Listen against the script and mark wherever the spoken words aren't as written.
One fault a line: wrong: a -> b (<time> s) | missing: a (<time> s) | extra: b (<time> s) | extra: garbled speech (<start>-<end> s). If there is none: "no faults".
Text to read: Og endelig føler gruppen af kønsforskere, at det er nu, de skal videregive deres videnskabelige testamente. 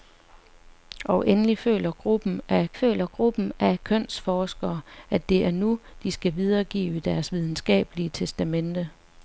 extra: føler gruppen af (2.7 s)